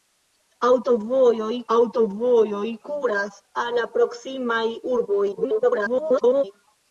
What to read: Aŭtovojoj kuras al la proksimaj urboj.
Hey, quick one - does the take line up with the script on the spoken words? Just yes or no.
no